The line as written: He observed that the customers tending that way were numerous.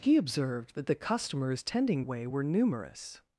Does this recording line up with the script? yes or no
no